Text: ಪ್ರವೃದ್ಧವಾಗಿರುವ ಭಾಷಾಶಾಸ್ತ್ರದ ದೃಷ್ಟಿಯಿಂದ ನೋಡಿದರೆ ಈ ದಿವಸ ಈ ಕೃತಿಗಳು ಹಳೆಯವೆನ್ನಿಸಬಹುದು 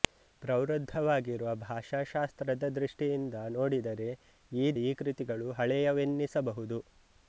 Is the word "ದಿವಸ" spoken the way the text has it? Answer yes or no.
no